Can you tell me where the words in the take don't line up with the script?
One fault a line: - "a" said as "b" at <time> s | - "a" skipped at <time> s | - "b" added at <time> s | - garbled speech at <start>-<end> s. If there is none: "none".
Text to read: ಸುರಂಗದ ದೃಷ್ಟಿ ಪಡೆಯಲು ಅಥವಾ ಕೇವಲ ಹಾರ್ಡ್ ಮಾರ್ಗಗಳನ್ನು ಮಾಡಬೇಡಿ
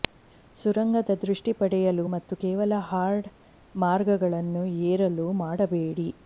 - "ಅಥವಾ" said as "ಮತ್ತು" at 2.1 s
- "ಏರಲು" added at 4.8 s